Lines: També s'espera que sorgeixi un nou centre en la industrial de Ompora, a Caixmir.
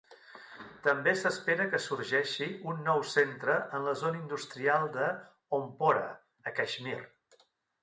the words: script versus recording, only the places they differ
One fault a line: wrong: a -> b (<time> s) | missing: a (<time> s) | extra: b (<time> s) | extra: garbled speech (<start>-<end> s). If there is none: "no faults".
extra: zona (4.0 s)